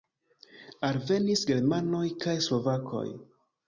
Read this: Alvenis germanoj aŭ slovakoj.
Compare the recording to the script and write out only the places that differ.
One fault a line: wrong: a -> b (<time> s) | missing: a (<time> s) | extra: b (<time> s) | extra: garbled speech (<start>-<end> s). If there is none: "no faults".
wrong: aŭ -> kaj (2.3 s)